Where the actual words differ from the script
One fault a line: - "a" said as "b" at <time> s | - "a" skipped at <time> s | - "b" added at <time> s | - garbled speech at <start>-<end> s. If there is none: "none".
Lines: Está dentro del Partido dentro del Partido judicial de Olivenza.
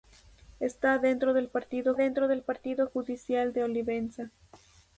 none